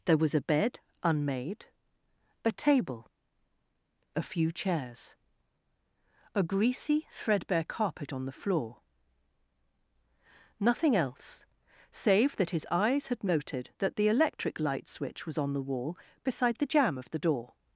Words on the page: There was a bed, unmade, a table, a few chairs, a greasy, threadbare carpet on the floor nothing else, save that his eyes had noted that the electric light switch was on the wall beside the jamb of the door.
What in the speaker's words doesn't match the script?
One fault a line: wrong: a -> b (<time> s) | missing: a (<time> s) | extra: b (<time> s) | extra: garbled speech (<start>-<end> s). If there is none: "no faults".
no faults